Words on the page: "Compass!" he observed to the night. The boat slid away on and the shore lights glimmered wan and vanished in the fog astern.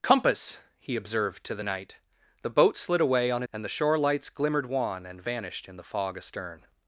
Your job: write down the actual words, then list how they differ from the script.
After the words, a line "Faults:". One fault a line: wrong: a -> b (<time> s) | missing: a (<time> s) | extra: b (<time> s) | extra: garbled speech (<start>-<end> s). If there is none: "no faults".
"Compass!" he observed to the night. The boat slid away on and the shore lights glimmered wan and vanished in the fog astern.
Faults:
no faults